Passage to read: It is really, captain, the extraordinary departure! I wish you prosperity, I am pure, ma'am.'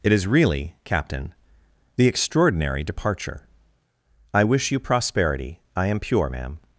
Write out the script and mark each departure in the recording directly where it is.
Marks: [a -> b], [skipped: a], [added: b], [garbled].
It is really, captain, the extraordinary departure! I wish you prosperity, I am pure, ma'am.'